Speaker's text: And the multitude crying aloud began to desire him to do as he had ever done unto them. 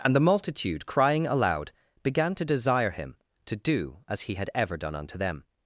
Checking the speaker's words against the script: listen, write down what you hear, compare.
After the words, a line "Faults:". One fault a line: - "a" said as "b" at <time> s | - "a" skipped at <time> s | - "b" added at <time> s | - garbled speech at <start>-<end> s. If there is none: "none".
And the multitude crying aloud began to desire him to do as he had ever done unto them.
Faults:
none